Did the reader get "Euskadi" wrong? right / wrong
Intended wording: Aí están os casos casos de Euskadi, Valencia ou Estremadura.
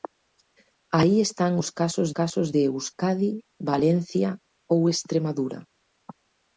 right